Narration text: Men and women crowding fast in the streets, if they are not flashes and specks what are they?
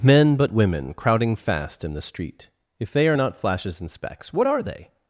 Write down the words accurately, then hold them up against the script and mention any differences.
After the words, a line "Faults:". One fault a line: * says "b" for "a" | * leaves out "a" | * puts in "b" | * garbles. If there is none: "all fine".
Men but women crowding fast in the street, if they are not flashes and specks what are they?
Faults:
* says "but" for "and"
* says "street" for "streets"